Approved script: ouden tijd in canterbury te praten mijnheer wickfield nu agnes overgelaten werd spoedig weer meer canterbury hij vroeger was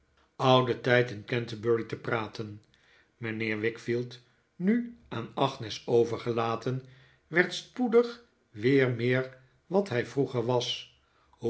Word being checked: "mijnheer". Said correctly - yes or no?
yes